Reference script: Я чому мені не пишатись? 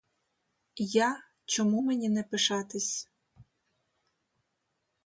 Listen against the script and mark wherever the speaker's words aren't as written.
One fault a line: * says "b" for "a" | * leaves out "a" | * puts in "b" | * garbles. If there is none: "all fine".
all fine